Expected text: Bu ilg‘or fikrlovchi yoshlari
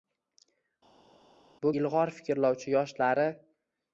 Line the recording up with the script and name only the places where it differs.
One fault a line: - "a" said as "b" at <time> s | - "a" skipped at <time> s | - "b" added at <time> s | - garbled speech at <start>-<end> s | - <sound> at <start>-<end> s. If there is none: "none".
none